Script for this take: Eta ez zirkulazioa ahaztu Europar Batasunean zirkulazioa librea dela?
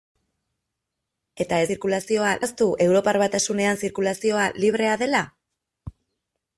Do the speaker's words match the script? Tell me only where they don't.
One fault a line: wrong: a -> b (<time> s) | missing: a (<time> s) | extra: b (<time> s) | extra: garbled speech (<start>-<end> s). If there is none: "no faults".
no faults